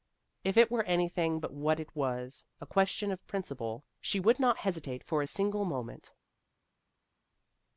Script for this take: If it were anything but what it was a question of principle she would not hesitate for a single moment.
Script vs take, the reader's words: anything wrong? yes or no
no